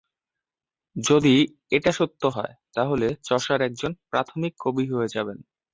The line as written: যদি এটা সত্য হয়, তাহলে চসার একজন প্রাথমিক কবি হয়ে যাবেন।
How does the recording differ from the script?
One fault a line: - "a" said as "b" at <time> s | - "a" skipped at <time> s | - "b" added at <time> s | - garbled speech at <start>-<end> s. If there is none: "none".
none